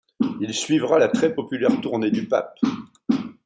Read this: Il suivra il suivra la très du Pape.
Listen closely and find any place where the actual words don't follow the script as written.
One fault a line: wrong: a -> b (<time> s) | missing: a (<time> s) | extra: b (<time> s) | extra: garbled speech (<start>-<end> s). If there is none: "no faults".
wrong: il suivra la très -> la très populaire tournée (1.0 s)